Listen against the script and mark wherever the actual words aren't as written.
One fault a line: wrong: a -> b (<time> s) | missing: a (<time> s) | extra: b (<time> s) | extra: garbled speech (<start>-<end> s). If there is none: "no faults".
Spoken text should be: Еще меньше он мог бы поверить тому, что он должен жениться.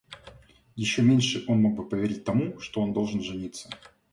no faults